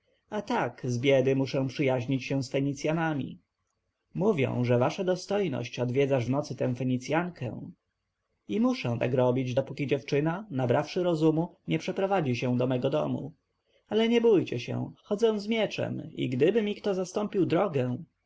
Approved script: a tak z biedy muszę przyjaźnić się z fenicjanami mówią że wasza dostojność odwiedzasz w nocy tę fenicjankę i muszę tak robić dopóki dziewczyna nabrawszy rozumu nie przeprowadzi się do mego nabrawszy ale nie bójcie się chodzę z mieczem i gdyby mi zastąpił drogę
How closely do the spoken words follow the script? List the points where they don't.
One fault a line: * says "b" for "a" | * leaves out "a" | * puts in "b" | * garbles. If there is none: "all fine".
* says "domu" for "nabrawszy"
* puts in "kto"